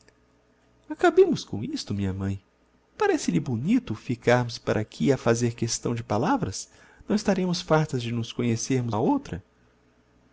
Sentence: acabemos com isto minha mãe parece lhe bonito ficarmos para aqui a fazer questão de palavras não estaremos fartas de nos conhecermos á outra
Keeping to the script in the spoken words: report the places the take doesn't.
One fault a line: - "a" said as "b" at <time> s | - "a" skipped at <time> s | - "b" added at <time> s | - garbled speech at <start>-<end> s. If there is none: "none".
none